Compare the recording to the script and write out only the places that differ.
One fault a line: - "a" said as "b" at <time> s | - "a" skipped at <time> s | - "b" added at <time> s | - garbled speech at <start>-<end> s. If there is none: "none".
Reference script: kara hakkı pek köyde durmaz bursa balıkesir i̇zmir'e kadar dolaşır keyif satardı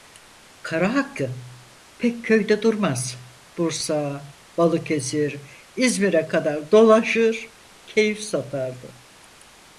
none